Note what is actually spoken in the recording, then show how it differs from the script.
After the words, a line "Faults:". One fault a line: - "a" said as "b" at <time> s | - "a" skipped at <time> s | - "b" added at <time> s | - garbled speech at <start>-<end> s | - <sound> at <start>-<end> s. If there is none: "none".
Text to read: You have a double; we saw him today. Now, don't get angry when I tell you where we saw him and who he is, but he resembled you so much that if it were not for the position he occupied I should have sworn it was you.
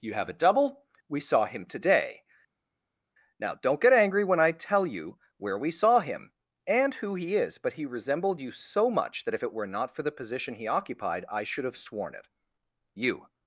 You have a double; we saw him today. Now, don't get angry when I tell you where we saw him and who he is, but he resembled you so much that if it were not for the position he occupied I should have sworn it you.
Faults:
- "was" skipped at 12.3 s